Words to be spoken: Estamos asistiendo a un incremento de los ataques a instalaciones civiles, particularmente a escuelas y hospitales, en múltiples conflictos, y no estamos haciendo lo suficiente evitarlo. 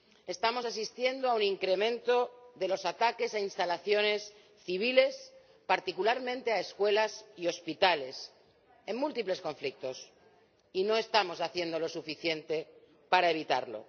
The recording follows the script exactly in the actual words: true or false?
false